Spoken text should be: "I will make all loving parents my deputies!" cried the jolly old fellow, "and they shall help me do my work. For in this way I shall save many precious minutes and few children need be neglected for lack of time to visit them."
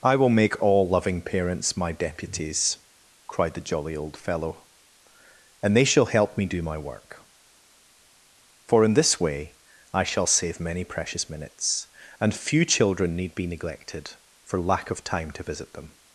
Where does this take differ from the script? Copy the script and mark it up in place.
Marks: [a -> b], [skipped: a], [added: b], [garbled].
"I will make all loving parents my deputies!" cried the jolly old fellow, "and they shall help me do my work. For in this way I shall save many precious minutes and few children need be neglected for lack of time to visit them."